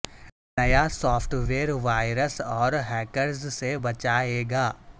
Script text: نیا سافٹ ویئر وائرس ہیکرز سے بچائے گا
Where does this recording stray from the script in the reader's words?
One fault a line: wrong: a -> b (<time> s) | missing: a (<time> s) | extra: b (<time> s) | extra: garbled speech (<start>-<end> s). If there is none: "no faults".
extra: اور (2.6 s)